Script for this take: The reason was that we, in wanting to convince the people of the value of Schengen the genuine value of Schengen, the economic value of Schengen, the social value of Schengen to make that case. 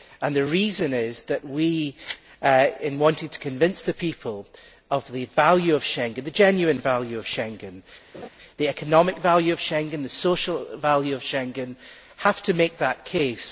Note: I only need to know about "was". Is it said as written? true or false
false